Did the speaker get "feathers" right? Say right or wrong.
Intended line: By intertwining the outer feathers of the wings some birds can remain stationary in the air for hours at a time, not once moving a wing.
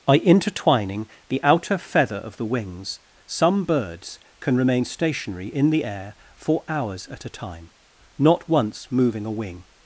wrong